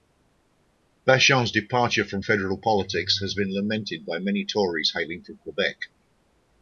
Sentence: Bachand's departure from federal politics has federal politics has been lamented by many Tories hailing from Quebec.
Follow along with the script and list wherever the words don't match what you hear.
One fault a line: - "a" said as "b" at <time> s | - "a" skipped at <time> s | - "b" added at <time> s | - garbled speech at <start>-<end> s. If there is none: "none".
- "federal politics has" skipped at 3.3 s